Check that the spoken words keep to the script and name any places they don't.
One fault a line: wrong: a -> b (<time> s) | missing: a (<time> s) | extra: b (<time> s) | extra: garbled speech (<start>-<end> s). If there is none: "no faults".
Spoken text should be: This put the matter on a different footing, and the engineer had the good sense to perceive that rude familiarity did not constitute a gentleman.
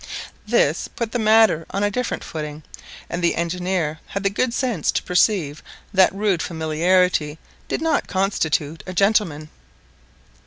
no faults